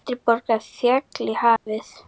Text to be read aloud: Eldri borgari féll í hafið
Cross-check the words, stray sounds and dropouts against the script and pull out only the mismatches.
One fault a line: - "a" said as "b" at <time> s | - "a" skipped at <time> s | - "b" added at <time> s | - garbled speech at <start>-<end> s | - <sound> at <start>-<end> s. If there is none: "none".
- dropout at 1.6-1.7 s